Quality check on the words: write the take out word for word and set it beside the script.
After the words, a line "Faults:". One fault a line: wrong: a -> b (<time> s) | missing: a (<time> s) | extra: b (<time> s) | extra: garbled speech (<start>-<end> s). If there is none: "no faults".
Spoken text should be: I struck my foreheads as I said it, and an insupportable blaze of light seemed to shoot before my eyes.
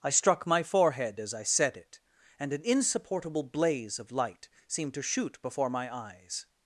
I struck my forehead as I said it, and an insupportable blaze of light seemed to shoot before my eyes.
Faults:
wrong: foreheads -> forehead (0.6 s)